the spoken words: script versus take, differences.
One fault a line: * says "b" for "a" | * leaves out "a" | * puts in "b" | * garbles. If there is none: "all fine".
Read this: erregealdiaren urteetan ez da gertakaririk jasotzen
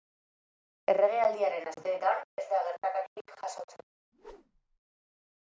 all fine